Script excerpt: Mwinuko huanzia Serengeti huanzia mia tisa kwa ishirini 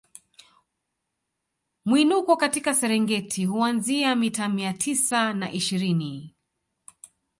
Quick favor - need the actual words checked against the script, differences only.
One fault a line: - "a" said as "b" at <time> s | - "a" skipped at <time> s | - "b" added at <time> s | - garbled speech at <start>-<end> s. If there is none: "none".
- "huanzia" said as "katika" at 2.4 s
- "mita" added at 4.2 s
- "kwa" said as "na" at 5.3 s